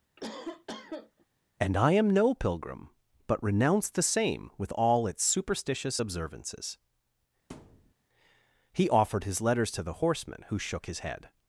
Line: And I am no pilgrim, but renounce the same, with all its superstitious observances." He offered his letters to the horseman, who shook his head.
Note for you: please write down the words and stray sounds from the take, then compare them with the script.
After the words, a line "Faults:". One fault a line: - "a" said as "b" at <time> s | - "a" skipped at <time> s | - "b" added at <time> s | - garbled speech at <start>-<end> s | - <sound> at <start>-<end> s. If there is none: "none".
And I am no pilgrim, but renounce the same, with all its superstitious observances." He offered his letters to the horseman, who shook his head.
Faults:
- cough at 0.2-1.3 s
- thud at 7.5-7.9 s